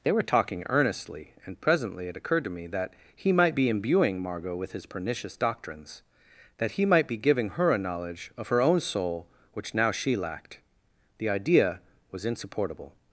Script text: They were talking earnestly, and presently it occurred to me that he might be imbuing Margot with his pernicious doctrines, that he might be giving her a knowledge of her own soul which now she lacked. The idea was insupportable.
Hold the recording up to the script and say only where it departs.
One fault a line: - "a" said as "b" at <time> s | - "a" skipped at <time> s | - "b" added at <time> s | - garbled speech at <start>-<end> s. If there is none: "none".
none